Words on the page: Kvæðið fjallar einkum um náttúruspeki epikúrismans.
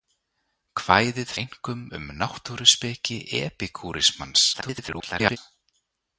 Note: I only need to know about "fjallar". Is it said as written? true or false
false